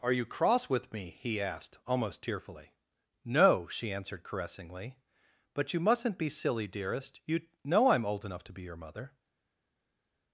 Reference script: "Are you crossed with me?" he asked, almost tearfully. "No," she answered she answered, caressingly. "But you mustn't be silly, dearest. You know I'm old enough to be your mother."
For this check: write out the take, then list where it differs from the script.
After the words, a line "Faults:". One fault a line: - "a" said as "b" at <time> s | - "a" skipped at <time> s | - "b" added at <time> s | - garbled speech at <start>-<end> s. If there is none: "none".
"Are you cross with me?" he asked, almost tearfully. "No," she answered, caressingly. "But you mustn't be silly, dearest. You know I'm old enough to be your mother."
Faults:
- "crossed" said as "cross" at 0.2 s
- "she answered" skipped at 4.2 s